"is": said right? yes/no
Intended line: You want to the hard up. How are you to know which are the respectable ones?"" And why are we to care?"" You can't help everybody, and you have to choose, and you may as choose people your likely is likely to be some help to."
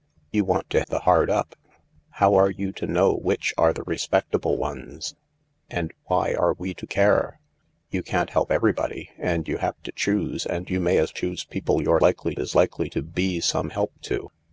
yes